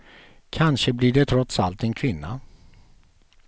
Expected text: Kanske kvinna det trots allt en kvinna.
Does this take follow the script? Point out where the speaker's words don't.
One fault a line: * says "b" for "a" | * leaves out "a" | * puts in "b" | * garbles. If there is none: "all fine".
* says "blir" for "kvinna"